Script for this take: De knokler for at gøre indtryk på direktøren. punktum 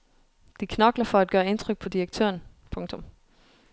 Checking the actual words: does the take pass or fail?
pass